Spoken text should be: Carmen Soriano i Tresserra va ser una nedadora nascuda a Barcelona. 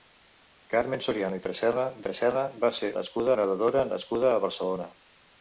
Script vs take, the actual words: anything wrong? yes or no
yes